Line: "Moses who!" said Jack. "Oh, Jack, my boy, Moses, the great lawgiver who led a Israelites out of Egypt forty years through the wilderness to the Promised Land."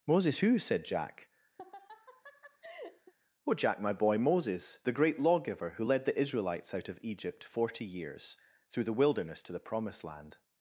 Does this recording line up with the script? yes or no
no